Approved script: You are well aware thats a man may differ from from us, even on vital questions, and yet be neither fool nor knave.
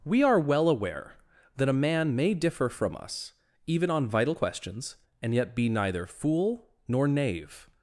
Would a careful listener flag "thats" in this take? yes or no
yes